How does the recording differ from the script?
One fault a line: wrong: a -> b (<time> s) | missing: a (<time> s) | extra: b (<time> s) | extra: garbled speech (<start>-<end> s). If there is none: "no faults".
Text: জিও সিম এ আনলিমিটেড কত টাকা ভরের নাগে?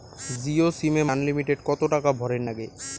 no faults